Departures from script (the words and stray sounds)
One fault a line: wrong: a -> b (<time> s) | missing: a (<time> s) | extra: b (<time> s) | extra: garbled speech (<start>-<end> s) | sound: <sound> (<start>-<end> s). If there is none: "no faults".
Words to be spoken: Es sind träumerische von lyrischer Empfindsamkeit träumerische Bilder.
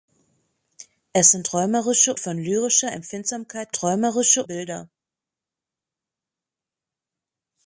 no faults